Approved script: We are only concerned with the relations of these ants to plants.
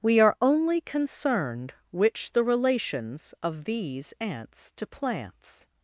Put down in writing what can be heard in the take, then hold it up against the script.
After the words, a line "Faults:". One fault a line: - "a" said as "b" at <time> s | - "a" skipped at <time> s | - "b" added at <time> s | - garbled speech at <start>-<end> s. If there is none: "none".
We are only concerned which the relations of these ants to plants.
Faults:
- "with" said as "which" at 1.9 s